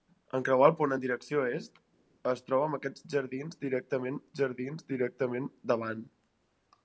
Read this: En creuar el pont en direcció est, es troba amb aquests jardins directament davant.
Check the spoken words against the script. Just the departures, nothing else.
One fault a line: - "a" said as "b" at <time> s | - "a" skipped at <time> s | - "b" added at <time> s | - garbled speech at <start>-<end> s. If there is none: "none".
- "jardins directament" added at 4.4 s